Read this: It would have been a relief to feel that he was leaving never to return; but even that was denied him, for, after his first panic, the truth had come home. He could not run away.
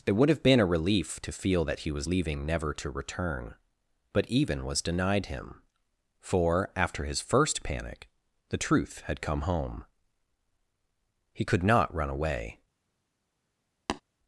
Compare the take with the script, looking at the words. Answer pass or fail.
fail